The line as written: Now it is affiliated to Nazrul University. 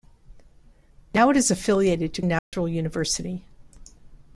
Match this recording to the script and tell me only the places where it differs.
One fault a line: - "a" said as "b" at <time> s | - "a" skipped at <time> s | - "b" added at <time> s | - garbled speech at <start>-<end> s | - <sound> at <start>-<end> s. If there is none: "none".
- dropout at 2.4-2.5 s